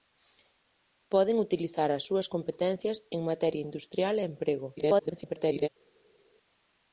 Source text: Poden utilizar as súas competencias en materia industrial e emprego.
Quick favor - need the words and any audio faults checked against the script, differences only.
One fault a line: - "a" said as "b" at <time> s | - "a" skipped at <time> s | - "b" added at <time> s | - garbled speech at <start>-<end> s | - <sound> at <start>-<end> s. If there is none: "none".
- garbled speech at 4.8-5.7 s